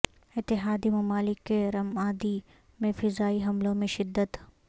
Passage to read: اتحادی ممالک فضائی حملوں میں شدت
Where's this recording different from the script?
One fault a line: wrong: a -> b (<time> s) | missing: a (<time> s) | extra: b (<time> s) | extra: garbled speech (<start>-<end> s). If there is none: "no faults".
extra: کے رمادی میں (1.4 s)